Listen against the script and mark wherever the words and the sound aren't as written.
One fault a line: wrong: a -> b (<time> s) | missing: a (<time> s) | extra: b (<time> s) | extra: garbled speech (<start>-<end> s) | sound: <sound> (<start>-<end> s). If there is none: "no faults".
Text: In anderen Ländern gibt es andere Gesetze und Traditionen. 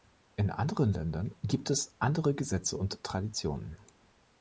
no faults